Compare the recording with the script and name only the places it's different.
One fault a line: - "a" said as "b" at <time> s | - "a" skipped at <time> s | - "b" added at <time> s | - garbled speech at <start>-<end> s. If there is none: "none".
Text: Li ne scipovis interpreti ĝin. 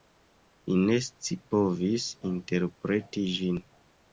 none